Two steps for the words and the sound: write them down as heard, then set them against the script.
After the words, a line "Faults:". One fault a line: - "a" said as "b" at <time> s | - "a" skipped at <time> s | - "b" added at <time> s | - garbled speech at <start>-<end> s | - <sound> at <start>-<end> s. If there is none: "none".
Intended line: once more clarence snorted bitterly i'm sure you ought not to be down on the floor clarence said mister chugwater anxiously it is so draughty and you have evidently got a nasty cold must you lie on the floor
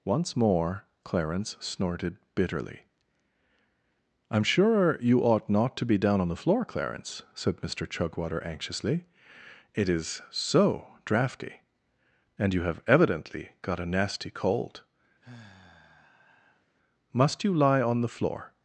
once more clarence snorted bitterly i'm sure you ought not to be down on the floor clarence said mister chugwater anxiously it is so draughty and you have evidently got a nasty cold must you lie on the floor
Faults:
- sigh at 15.2-16.6 s